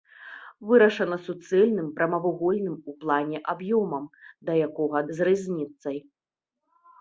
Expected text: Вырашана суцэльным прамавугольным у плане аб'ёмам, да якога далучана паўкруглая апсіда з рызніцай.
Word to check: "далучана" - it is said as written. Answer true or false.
false